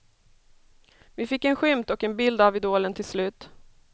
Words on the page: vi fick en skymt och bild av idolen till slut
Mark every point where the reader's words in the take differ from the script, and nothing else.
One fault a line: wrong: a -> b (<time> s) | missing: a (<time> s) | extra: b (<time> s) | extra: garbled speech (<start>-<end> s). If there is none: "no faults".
extra: en (2.0 s)